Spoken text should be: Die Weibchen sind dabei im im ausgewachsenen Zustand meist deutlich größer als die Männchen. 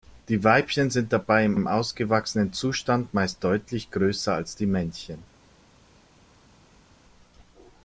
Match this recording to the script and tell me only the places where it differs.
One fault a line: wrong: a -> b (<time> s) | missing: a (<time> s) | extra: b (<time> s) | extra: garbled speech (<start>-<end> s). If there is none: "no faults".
no faults